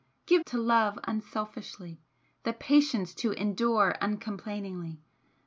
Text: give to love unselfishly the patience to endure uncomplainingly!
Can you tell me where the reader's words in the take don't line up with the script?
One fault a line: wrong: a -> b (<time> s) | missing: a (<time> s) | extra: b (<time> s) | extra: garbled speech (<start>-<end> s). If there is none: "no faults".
no faults